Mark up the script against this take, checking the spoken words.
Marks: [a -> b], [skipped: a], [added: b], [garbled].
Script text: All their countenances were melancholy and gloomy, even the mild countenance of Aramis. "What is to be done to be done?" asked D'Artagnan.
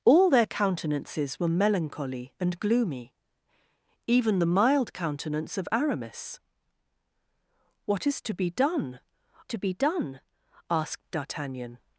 All their countenances were melancholy and gloomy, even the mild countenance of Aramis. "What is to be done to be done?" asked D'Artagnan.